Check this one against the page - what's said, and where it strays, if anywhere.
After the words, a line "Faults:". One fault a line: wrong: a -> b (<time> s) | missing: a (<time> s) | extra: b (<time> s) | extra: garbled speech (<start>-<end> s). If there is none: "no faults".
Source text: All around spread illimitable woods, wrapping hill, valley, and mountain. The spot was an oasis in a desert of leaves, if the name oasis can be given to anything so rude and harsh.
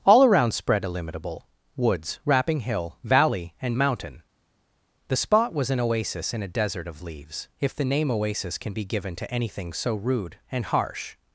All around spread illimitable woods, wrapping hill, valley, and mountain. The spot was an oasis in a desert of leaves, if the name oasis can be given to anything so rude and harsh.
Faults:
no faults